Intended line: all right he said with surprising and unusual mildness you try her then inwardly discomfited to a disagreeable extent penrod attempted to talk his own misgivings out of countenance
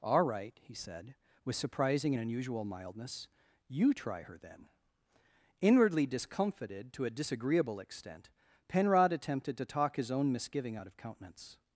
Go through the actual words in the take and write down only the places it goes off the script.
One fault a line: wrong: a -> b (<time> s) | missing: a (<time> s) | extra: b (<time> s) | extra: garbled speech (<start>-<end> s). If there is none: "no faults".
wrong: misgivings -> misgiving (10.3 s)